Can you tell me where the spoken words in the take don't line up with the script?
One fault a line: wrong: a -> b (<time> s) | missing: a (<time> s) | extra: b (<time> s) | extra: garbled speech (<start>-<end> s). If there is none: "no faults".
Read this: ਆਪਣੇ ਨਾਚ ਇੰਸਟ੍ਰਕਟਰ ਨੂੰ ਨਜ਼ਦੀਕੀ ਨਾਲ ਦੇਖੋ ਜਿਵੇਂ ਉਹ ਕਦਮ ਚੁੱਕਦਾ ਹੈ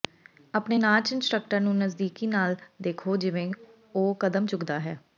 no faults